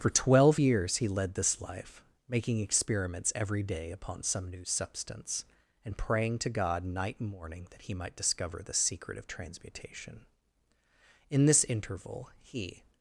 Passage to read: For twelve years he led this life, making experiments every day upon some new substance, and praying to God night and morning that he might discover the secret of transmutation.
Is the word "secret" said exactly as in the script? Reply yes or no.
yes